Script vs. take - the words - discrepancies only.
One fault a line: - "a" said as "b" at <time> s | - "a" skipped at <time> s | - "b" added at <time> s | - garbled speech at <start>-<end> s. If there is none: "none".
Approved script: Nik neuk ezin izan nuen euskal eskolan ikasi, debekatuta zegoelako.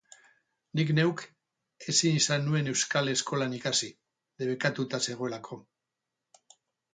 none